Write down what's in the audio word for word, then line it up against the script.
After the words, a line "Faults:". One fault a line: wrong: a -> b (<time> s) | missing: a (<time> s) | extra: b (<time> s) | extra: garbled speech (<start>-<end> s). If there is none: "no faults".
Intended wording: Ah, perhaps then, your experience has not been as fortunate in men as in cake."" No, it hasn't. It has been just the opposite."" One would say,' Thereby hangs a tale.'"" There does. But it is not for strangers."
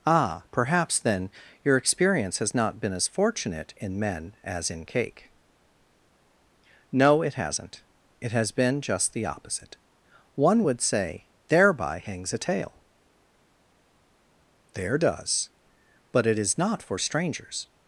Ah, perhaps then, your experience has not been as fortunate in men as in cake."" No, it hasn't. It has been just the opposite."" One would say,' Thereby hangs a tale.'"" There does. But it is not for strangers."
Faults:
no faults